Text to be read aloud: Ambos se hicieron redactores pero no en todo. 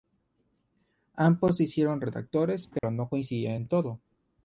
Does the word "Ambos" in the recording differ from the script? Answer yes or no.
no